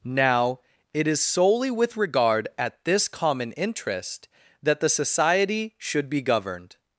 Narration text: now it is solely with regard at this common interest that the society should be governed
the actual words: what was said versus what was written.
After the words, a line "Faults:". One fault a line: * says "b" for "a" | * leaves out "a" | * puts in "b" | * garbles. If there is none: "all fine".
now it is solely with regard at this common interest that the society should be governed
Faults:
all fine